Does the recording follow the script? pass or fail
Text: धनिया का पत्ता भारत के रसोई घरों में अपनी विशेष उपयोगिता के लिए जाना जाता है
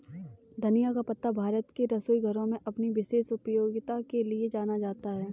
pass